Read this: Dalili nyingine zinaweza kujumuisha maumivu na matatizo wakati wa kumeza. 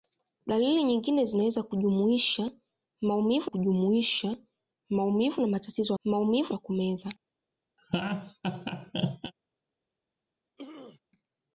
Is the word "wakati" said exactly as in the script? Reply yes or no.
no